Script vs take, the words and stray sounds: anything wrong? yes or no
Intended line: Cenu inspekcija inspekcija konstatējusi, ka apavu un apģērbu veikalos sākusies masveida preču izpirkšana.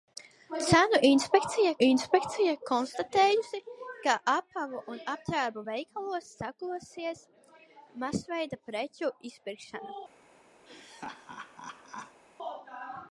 yes